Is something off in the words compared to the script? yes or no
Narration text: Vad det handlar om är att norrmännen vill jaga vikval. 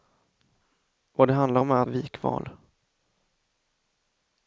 yes